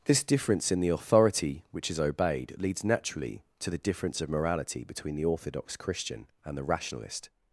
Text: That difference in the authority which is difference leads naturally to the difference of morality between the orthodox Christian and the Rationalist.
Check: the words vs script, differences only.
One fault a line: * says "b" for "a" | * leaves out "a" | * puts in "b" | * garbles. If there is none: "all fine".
* says "This" for "That"
* says "obeyed" for "difference"